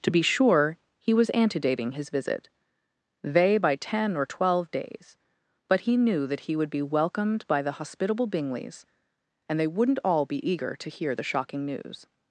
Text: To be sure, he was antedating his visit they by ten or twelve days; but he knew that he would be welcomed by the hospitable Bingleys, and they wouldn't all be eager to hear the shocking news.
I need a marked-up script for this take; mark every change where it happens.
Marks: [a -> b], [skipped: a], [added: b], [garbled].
To be sure, he was antedating his visit they by ten or twelve days; but he knew that he would be welcomed by the hospitable Bingleys, and they wouldn't all be eager to hear the shocking news.